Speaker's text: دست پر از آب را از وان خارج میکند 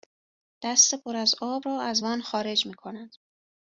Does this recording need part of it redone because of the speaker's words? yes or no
no